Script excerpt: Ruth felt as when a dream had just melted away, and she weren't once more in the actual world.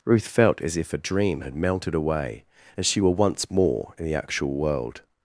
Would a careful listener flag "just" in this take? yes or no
yes